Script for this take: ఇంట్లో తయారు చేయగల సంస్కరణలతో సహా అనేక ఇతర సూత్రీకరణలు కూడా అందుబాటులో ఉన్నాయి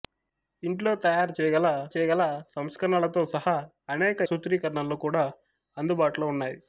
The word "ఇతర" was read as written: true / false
false